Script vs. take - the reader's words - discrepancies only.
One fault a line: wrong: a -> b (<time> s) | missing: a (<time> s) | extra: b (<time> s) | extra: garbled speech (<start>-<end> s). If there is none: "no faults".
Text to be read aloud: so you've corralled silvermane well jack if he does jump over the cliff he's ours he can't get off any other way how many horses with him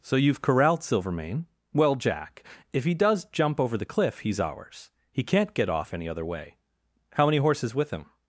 no faults